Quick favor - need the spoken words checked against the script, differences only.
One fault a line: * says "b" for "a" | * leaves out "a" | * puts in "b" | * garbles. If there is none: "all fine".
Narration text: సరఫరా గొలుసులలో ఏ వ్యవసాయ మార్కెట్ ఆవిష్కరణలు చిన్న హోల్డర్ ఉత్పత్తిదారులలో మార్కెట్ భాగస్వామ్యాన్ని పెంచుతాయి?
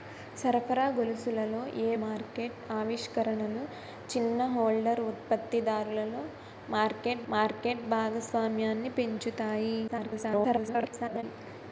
* leaves out "వ్యవసాయ"
* puts in "మార్కెట్"
* garbles